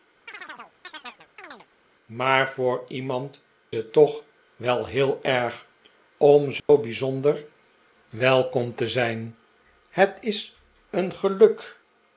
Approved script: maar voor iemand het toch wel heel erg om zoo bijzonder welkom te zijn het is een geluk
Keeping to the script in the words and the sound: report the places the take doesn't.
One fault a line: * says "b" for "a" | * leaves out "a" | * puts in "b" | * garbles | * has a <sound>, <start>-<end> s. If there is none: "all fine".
* has a chirp, 0.3-1.7 s
* has a dropout, 6.6-6.7 s